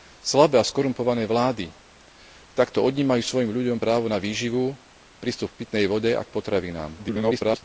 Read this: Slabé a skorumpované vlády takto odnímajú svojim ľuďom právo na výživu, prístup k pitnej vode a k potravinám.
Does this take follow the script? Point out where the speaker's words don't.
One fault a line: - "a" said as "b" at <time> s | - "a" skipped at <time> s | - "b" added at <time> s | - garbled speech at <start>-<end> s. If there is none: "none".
- garbled speech at 7.0-7.6 s